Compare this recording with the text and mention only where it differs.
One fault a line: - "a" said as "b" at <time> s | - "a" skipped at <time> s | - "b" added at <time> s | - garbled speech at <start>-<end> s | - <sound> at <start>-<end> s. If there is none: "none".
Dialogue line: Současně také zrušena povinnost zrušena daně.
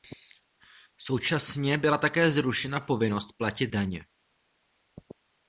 - "byla" added at 1.8 s
- "zrušena" said as "platit" at 3.4 s